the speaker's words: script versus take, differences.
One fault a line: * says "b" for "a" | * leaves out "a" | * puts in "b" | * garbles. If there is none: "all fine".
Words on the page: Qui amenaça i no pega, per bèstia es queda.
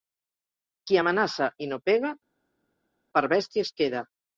all fine